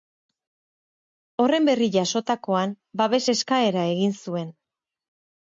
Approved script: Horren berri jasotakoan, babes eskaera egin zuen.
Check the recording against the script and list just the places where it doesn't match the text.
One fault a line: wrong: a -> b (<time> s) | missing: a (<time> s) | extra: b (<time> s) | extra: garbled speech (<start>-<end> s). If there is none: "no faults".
no faults